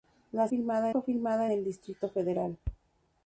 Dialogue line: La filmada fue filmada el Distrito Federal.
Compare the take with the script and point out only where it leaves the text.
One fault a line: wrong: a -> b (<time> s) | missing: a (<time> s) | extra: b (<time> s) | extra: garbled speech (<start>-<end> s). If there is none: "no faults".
no faults